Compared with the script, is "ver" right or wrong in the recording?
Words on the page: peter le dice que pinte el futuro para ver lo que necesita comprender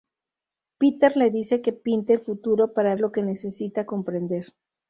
wrong